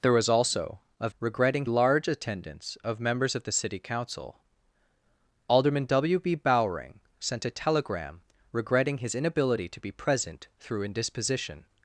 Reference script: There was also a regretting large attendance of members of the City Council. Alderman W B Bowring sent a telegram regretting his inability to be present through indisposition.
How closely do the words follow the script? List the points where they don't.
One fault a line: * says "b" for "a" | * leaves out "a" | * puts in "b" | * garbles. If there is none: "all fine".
all fine